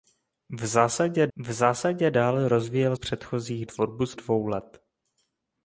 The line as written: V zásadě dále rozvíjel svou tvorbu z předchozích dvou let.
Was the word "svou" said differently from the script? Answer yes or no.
yes